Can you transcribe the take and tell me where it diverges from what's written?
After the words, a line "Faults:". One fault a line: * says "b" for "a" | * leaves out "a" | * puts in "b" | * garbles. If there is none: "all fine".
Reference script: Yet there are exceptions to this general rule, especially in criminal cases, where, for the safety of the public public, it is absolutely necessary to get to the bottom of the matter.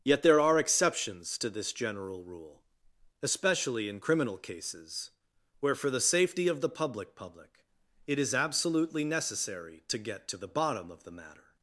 Yet there are exceptions to this general rule, especially in criminal cases, where, for the safety of the public public, it is absolutely necessary to get to the bottom of the matter.
Faults:
all fine